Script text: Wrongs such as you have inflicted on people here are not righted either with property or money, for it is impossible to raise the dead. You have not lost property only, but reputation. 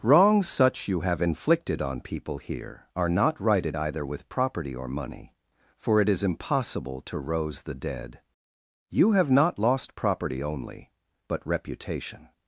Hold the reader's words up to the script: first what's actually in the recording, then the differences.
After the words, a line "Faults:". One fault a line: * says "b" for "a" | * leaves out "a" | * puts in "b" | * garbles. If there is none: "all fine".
Wrongs such you have inflicted on people here are not righted either with property or money, for it is impossible to rose the dead. You have not lost property only, but reputation.
Faults:
* leaves out "as"
* says "rose" for "raise"